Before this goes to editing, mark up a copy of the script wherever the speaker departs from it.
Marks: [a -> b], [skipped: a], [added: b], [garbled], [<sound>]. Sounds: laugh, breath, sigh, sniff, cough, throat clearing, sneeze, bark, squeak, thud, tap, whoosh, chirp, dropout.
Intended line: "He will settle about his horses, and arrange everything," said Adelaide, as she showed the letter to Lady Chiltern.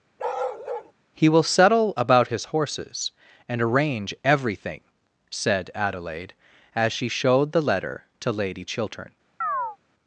[bark] "He will settle about his horses, and arrange everything," said Adelaide, as she showed the letter to Lady Chiltern. [chirp]